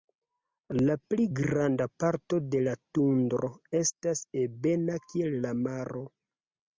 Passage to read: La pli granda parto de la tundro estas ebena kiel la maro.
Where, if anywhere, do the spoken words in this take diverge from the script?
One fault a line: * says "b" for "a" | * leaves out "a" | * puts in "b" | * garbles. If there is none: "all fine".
all fine